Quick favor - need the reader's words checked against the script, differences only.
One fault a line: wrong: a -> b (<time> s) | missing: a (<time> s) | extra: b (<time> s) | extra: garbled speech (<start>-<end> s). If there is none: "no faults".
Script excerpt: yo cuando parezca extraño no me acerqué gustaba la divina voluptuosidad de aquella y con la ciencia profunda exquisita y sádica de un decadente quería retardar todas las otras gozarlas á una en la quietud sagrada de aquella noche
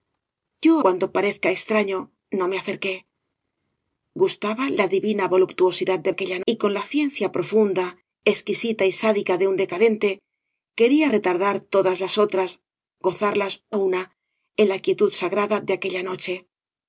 no faults